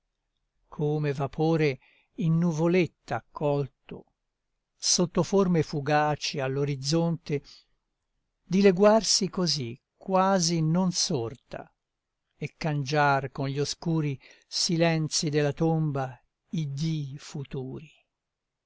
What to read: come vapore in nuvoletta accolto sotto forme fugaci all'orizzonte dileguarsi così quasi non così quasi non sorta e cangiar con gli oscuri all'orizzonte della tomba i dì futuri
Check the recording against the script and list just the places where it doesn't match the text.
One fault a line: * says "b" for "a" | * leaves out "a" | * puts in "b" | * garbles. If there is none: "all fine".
* leaves out "così quasi non"
* says "silenzi" for "all'orizzonte"